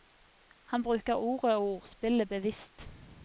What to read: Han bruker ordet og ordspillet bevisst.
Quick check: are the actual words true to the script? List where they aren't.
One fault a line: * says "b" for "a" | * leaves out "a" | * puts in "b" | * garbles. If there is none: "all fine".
all fine